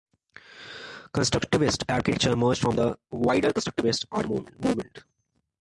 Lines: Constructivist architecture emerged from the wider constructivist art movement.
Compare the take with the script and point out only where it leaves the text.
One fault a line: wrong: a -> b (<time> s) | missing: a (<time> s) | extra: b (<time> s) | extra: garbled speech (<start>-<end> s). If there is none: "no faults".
no faults